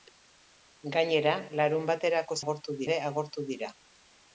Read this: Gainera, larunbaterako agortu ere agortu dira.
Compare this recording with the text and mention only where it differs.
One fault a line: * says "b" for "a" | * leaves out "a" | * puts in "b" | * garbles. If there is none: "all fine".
all fine